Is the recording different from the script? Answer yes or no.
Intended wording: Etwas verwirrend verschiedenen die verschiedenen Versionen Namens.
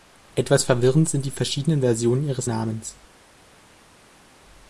yes